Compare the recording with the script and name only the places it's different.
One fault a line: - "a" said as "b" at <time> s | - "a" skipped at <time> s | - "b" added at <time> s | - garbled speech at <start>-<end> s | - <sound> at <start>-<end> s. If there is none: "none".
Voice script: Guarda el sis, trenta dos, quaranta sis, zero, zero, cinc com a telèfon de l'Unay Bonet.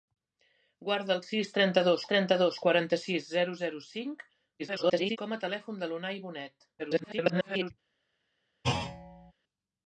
- "trenta dos" added at 2.1 s
- garbled speech at 4.6-5.2 s
- garbled speech at 6.8-7.7 s
- thud at 8.6-9.3 s